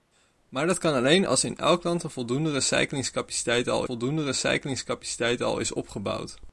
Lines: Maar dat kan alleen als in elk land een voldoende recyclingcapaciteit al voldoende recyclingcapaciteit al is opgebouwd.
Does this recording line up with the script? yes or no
yes